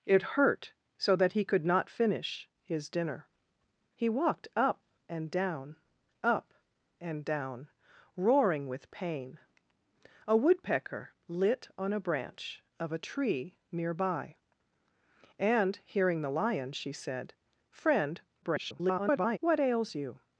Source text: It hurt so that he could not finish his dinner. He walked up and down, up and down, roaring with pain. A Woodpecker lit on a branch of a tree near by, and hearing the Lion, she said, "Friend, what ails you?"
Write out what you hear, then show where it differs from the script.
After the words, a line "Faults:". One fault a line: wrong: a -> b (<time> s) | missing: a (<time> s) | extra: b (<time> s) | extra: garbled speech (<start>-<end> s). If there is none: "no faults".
It hurt so that he could not finish his dinner. He walked up and down, up and down, roaring with pain. A Woodpecker lit on a branch of a tree near by, and hearing the Lion, she said, "Friend, [garbled] what ails you?"
Faults:
extra: garbled speech (18.4-19.4 s)